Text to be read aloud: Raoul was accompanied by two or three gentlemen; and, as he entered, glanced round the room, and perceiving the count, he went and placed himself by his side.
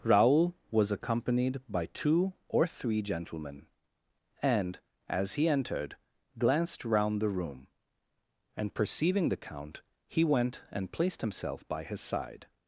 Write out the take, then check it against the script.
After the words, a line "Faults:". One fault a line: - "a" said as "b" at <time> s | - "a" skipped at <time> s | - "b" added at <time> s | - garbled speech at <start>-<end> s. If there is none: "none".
Raoul was accompanied by two or three gentlemen; and, as he entered, glanced round the room, and perceiving the count, he went and placed himself by his side.
Faults:
none